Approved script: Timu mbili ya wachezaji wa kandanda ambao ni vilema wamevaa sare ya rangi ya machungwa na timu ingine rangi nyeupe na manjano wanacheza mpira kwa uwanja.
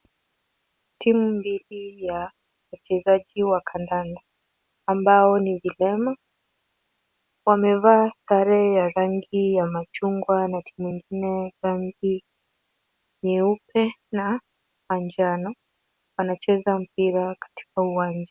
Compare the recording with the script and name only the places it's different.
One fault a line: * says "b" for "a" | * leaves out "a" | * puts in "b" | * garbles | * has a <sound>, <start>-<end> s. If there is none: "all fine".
* says "katika" for "kwa"